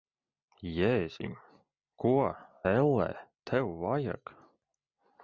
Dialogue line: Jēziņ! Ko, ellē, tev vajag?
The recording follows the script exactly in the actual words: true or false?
true